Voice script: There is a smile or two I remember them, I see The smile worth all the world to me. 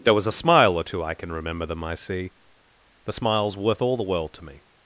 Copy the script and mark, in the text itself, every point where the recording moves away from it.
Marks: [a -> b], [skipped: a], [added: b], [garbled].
There [is -> was] a smile or two I [added: can] remember them, I see The [smile -> smiles] worth all the world to me.